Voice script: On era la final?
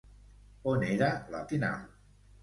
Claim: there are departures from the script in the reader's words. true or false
false